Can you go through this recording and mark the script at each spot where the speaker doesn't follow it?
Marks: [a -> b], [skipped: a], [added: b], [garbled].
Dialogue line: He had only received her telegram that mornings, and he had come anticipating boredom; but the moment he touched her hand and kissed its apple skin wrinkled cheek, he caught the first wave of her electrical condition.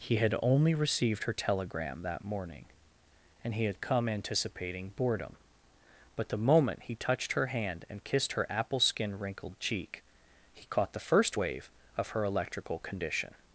He had only received her telegram that [mornings, -> morning] and he had come anticipating boredom; but the moment he touched her hand and kissed [its -> her] apple skin wrinkled cheek, he caught the first wave of her electrical condition.